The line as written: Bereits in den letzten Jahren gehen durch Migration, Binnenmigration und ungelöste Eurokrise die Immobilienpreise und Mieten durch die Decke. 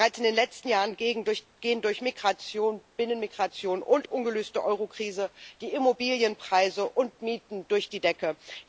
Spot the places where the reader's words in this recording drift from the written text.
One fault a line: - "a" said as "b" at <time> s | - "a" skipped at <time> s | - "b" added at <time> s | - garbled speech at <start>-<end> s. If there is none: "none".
none